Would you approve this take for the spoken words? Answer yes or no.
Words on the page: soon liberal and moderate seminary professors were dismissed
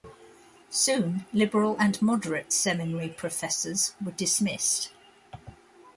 yes